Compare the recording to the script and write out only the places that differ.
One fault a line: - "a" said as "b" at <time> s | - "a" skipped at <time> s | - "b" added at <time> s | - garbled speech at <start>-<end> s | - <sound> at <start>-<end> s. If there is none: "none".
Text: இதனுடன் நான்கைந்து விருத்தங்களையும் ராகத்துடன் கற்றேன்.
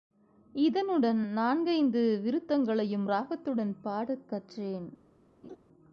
- "பாடக்" added at 3.8 s
- laugh at 5.4-5.6 s